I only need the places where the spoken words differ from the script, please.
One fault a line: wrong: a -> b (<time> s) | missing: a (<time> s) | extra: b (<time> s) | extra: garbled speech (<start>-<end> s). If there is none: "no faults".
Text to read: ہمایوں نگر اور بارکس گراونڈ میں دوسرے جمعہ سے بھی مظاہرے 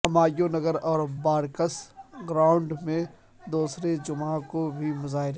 wrong: سے -> کو (4.5 s)